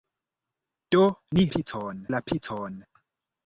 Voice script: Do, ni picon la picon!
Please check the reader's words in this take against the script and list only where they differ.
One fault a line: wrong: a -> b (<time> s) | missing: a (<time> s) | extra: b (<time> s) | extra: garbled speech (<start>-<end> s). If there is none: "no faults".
no faults